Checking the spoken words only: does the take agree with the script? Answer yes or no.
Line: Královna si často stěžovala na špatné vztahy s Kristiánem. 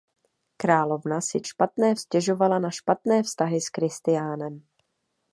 no